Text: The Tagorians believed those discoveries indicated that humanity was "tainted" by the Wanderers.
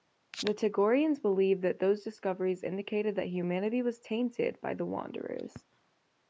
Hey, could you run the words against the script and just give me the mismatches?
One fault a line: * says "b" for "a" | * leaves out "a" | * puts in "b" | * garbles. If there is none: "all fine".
* puts in "that"